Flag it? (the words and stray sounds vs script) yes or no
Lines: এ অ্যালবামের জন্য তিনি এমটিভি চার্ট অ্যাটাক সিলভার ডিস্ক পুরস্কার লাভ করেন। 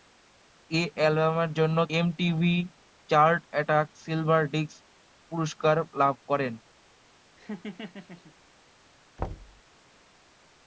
yes